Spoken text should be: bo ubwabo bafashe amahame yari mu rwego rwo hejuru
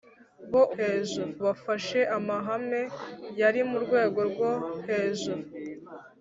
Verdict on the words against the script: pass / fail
fail